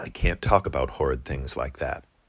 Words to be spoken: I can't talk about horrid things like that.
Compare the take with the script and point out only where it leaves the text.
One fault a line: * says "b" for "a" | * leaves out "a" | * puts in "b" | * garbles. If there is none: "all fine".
all fine